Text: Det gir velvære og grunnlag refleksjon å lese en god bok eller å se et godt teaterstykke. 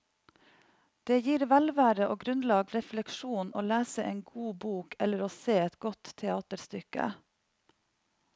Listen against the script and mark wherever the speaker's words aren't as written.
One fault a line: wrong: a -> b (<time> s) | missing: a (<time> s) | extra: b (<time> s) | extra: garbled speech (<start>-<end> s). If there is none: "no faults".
no faults